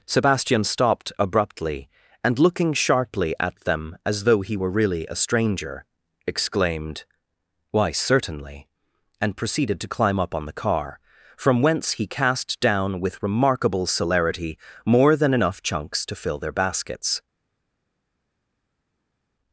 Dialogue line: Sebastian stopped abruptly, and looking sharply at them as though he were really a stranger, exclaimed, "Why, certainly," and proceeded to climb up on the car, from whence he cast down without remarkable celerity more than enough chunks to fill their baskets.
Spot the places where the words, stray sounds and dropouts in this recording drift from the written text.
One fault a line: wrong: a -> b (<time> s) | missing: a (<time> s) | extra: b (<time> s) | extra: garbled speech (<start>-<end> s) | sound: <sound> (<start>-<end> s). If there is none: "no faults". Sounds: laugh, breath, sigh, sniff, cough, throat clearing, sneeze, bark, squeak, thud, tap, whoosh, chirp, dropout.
wrong: without -> with (13.0 s)